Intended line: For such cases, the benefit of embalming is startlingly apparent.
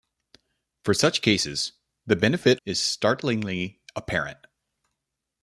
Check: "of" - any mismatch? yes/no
yes